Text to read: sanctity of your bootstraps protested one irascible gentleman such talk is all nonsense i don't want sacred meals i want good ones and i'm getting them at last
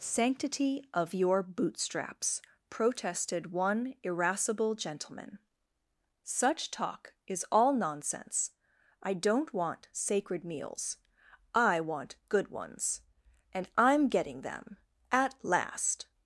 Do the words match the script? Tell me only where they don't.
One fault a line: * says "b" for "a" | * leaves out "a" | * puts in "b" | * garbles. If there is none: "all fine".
all fine